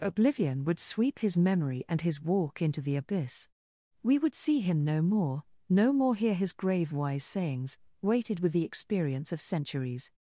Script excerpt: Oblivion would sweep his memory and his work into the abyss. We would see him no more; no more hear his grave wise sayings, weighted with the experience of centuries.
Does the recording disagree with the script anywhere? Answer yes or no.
yes